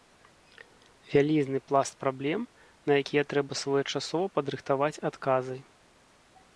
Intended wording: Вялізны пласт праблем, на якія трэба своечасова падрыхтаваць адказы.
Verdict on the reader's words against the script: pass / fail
pass